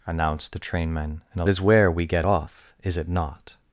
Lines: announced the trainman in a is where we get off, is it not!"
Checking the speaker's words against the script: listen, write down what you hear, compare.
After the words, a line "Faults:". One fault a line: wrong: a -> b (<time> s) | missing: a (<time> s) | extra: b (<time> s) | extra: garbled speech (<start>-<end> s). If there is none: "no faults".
announced the trainman in a is where we get off, is it not!"
Faults:
no faults